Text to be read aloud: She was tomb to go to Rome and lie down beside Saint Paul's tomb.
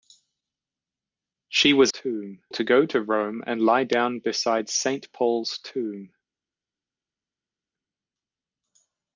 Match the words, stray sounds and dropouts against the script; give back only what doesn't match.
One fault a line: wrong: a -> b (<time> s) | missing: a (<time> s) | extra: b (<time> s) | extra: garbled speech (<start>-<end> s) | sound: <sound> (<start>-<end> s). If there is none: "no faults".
no faults